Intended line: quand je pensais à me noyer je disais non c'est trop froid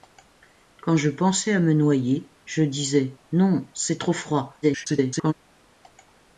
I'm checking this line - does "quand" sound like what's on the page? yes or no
yes